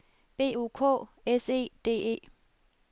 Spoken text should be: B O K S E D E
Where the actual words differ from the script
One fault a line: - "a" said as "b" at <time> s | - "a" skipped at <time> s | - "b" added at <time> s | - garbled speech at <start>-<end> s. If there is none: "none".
none